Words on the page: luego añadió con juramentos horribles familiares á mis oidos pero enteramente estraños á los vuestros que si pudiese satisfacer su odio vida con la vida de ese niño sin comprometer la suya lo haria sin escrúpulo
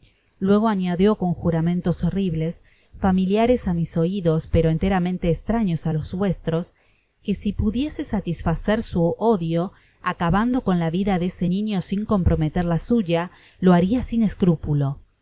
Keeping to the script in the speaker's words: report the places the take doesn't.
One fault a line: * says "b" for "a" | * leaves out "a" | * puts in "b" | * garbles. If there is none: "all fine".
* says "acabando" for "vida"